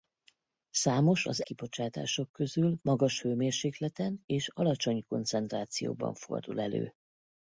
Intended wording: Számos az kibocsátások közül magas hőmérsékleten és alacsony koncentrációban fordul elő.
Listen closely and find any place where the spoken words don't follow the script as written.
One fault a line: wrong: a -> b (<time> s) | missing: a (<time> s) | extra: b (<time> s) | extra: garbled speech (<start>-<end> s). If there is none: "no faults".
no faults